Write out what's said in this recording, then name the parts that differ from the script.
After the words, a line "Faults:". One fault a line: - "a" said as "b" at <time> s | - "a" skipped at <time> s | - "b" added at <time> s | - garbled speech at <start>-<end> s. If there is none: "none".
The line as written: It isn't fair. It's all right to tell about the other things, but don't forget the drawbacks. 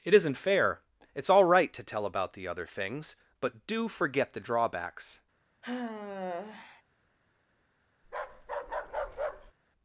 It isn't fair. It's all right to tell about the other things, but do forget the drawbacks.
Faults:
- "don't" said as "do" at 3.7 s